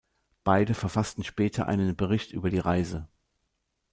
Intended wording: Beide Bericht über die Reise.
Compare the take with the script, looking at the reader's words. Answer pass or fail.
fail